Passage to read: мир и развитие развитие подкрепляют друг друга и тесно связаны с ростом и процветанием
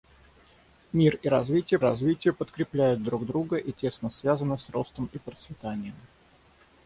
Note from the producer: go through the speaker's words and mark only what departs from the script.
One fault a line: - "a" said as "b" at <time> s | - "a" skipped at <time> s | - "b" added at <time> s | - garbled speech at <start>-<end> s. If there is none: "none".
none